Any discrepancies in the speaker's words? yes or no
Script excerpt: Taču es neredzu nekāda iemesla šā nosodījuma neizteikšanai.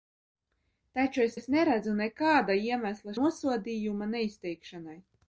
yes